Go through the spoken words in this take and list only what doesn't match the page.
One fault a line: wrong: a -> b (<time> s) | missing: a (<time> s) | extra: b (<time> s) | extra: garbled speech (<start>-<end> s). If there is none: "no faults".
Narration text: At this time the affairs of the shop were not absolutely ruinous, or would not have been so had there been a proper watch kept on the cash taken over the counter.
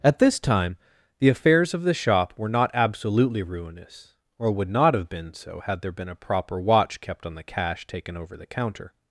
no faults